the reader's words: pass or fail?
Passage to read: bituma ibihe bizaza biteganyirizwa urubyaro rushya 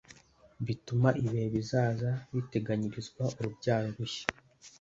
pass